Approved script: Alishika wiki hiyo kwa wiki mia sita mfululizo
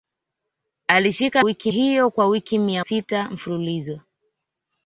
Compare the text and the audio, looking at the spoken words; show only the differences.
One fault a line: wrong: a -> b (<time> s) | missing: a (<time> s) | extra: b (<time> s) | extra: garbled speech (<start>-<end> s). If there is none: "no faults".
no faults